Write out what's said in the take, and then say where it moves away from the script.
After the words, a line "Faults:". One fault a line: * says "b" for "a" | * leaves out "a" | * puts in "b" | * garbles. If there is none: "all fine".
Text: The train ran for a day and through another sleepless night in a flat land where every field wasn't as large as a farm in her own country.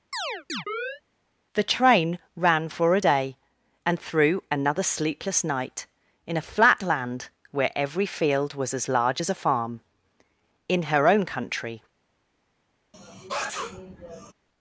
The train ran for a day and through another sleepless night in a flat land where every field was as large as a farm in her own country.
Faults:
* says "was" for "wasn't"